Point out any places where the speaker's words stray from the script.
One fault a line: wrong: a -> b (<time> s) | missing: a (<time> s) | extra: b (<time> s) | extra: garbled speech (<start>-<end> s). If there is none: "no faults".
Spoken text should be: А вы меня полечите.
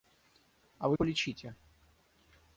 missing: меня (1.0 s)